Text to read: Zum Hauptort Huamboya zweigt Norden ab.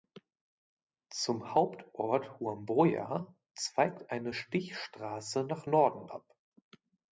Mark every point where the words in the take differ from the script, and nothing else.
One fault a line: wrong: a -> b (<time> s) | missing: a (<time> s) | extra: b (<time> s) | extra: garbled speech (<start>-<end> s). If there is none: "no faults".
extra: eine Stichstraße nach (4.1 s)